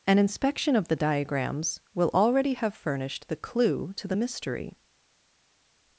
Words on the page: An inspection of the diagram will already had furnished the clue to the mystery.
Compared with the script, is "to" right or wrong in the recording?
right